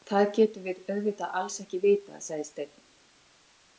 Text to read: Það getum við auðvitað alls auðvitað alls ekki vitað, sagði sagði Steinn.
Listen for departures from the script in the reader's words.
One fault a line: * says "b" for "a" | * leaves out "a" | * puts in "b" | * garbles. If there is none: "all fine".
* leaves out "auðvitað alls"
* leaves out "sagði"